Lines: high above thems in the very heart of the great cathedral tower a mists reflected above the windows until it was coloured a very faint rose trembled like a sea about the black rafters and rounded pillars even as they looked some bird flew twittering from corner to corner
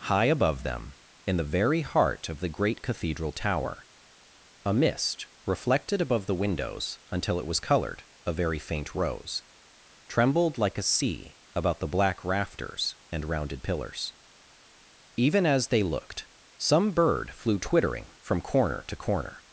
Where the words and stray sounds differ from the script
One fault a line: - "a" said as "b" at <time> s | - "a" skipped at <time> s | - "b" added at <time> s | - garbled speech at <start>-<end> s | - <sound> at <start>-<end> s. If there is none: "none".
- "thems" said as "them" at 0.6 s
- "mists" said as "mist" at 4.7 s